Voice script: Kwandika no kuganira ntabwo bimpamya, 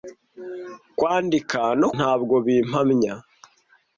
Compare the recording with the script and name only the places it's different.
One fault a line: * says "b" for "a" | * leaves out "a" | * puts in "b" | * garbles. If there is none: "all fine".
* leaves out "kuganira"